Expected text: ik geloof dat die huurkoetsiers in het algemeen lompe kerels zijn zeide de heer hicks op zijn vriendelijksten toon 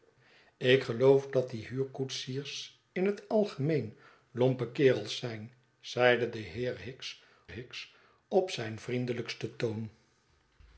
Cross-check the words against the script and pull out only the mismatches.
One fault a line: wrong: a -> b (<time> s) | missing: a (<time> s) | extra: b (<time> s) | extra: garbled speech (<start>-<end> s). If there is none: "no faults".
extra: hicks (7.5 s)